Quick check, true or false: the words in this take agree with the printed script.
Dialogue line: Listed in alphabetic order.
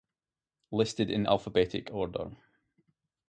true